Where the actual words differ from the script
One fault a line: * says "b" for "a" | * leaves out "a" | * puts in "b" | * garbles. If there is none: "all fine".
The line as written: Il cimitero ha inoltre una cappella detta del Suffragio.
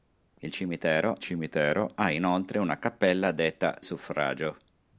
* puts in "cimitero"
* leaves out "del"